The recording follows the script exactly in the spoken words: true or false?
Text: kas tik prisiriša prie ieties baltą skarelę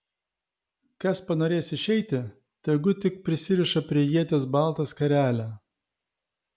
false